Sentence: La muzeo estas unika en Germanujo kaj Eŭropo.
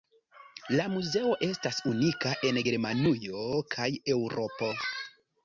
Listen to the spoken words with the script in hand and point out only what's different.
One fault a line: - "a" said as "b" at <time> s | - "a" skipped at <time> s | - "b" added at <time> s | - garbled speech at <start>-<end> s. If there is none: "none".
none